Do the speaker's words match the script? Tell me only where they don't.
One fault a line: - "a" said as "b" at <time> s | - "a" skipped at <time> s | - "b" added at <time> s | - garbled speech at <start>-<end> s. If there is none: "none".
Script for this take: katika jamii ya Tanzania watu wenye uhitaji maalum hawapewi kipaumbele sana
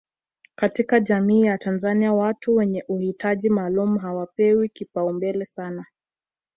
none